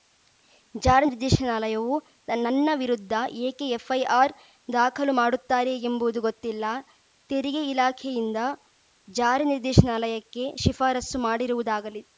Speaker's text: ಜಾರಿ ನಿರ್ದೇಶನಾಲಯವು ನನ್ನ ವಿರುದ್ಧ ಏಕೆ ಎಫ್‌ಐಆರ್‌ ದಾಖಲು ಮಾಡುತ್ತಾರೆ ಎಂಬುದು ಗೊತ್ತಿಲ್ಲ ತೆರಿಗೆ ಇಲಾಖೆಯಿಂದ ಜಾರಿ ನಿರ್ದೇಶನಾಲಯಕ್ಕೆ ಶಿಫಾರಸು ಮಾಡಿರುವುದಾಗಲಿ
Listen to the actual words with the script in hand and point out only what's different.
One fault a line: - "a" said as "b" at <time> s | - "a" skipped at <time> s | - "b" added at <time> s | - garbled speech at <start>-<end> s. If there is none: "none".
none